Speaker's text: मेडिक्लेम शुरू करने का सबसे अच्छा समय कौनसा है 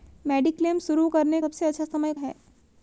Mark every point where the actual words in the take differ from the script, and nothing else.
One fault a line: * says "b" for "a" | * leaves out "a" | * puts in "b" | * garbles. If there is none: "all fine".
* leaves out "का"
* leaves out "कौनसा"